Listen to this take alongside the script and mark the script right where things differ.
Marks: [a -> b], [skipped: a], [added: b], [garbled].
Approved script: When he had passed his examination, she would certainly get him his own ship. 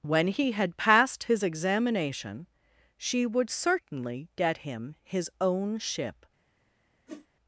When he had passed his examination, she would certainly get him his own ship.